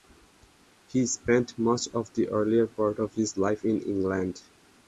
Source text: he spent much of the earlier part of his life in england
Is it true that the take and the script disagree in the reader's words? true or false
false